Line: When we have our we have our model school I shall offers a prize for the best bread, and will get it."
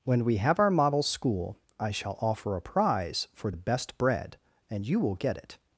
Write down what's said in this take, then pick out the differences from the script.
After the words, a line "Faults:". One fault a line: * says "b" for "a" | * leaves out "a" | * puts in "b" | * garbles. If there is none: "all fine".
When we have our model school I shall offer a prize for the best bread, and you will get it."
Faults:
* leaves out "we have our"
* says "offer" for "offers"
* puts in "you"